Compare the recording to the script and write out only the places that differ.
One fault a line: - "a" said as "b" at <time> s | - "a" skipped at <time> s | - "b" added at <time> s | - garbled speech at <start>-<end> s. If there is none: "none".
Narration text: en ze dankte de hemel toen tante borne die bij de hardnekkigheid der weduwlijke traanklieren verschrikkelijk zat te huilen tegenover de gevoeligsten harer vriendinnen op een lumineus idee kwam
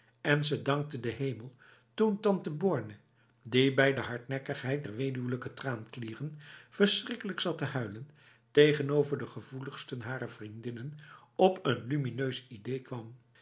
none